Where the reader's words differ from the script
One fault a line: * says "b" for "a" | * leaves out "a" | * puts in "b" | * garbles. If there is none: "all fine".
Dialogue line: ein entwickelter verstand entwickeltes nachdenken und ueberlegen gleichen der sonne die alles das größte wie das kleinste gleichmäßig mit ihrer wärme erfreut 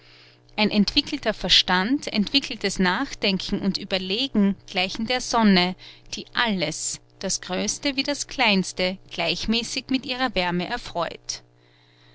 all fine